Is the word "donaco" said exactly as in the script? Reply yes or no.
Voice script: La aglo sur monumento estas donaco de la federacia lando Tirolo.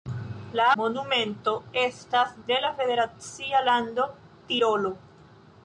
no